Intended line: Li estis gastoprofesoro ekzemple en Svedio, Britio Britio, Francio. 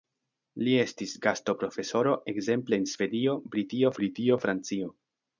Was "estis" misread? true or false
false